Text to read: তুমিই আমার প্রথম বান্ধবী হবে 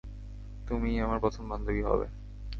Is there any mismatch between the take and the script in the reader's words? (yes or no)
no